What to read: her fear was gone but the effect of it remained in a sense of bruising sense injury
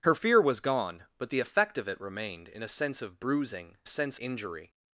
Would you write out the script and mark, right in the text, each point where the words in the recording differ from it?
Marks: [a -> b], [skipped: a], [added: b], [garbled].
her fear was gone but the effect of it remained in a sense of bruising sense injury